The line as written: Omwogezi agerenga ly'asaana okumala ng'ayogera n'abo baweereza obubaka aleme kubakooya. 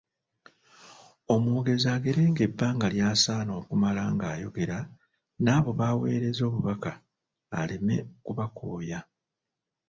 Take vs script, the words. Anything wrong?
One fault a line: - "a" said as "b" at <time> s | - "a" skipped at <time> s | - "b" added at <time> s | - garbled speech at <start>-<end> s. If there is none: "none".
- "ebbanga" added at 2.5 s